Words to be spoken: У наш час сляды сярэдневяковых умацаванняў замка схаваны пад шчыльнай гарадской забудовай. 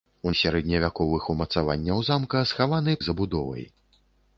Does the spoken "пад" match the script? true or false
false